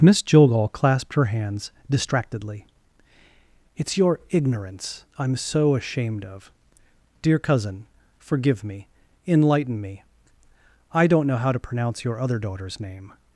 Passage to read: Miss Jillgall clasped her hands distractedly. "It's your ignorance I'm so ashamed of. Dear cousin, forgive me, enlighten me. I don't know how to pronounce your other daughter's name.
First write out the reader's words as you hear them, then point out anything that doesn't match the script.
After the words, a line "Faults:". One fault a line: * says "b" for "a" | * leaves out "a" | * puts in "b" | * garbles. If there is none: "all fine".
Miss Jillgall clasped her hands distractedly. "It's your ignorance I'm so ashamed of. Dear cousin, forgive me, enlighten me. I don't know how to pronounce your other daughter's name.
Faults:
all fine